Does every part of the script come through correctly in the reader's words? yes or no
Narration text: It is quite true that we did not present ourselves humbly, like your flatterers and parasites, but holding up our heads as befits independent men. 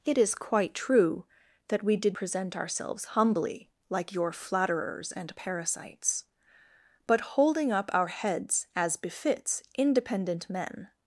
no